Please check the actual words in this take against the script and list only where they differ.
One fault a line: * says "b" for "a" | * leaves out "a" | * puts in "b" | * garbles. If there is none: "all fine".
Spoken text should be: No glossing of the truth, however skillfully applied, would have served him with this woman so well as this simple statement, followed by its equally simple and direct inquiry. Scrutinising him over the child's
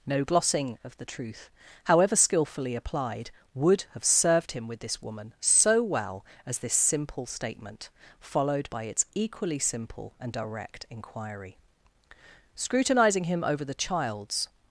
all fine